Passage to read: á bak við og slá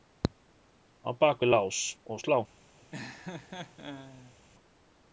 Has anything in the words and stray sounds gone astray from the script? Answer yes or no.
yes